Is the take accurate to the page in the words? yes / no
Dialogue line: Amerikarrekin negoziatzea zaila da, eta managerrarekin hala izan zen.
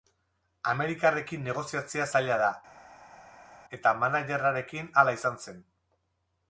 yes